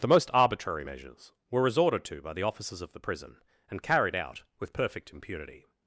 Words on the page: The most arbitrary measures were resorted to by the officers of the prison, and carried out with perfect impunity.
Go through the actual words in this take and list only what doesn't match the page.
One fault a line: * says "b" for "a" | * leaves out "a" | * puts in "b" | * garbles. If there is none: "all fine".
all fine